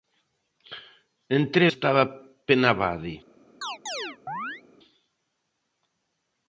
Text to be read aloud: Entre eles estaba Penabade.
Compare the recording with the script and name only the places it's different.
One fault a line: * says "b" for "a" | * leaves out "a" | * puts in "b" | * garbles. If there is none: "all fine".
* leaves out "eles"